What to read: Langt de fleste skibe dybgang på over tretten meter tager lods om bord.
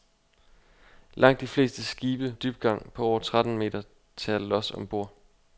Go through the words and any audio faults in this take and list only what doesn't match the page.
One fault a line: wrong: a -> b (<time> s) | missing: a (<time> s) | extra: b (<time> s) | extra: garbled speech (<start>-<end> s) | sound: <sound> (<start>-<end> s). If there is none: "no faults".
no faults